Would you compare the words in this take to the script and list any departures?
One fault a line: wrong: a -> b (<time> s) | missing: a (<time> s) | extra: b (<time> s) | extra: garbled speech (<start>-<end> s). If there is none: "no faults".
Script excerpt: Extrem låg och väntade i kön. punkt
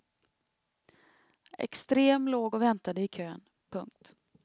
no faults